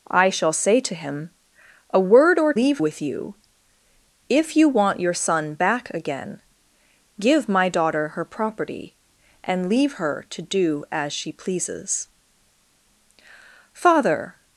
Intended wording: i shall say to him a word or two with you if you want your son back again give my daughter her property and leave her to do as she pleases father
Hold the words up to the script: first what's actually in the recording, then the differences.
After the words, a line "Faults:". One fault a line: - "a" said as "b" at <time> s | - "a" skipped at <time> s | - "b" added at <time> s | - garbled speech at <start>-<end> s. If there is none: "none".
i shall say to him a word or leave with you if you want your son back again give my daughter her property and leave her to do as she pleases father
Faults:
- "two" said as "leave" at 2.5 s